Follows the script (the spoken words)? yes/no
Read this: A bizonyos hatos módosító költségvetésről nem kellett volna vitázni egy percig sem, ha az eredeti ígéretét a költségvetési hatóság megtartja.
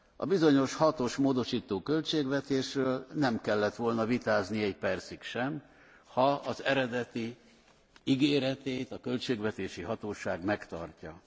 yes